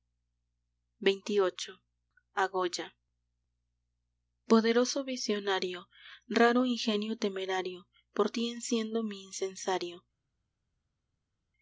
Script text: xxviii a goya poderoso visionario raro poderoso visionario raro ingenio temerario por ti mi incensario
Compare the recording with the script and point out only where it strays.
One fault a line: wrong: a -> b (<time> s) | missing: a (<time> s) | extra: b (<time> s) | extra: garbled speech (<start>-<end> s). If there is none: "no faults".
missing: poderoso visionario raro (6.7 s)
extra: enciendo (8.5 s)